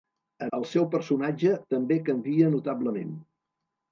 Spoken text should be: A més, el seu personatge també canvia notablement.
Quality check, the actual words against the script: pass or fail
fail